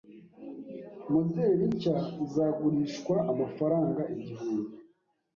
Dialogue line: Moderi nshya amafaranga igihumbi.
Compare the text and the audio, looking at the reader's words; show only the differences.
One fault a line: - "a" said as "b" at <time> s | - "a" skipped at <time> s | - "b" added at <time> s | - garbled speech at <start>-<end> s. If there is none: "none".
- "izagurishwa" added at 2.2 s